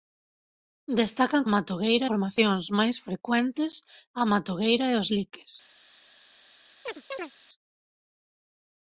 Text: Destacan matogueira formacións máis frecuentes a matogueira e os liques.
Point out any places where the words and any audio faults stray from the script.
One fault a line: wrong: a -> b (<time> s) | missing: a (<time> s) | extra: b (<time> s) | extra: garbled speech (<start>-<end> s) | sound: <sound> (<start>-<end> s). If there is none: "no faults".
sound: chirp (6.9-7.3 s)